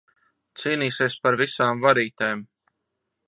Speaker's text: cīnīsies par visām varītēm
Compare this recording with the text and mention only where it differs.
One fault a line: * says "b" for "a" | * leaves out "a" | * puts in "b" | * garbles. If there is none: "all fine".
all fine